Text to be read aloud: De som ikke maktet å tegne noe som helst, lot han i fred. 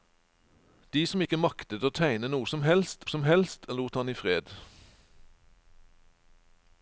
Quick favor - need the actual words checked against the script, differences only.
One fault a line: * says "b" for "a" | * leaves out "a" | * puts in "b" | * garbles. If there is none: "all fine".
* puts in "som helst"